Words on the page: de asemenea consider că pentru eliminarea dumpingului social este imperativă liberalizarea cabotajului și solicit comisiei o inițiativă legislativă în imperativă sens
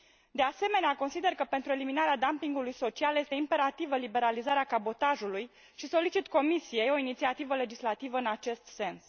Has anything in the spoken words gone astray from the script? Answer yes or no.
yes